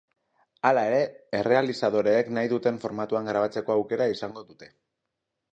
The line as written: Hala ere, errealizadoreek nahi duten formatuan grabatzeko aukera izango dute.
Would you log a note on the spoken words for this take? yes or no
no